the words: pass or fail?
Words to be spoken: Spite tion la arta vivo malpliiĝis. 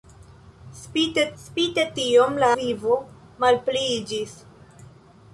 fail